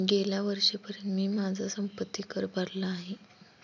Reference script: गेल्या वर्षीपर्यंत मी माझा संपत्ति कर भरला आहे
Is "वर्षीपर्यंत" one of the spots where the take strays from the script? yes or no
no